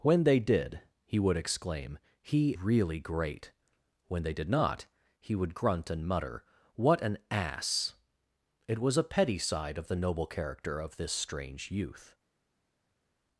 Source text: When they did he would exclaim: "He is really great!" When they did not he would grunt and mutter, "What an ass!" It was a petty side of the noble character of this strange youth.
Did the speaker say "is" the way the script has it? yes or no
no